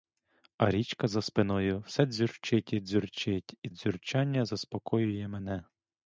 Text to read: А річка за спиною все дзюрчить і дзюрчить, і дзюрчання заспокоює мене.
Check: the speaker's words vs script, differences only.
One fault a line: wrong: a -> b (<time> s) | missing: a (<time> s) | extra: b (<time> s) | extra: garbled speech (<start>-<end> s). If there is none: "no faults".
no faults